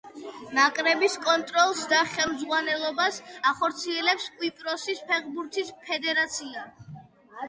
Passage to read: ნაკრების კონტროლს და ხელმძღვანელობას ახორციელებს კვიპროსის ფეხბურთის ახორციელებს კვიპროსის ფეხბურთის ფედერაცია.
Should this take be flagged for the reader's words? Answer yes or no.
yes